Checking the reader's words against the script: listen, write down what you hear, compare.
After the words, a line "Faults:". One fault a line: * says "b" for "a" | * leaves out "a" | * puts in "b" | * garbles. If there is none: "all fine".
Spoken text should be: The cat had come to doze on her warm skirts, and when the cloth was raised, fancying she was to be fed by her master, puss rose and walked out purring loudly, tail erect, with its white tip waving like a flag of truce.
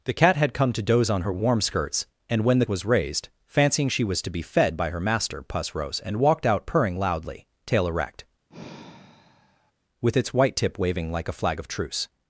The cat had come to doze on her warm skirts, and when the was raised, fancying she was to be fed by her master, puss rose and walked out purring loudly, tail erect, with its white tip waving like a flag of truce.
Faults:
* leaves out "cloth"